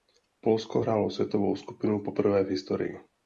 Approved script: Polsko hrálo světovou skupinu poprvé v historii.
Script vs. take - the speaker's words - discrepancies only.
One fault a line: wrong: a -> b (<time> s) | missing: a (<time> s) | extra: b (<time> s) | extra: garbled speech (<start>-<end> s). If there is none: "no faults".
no faults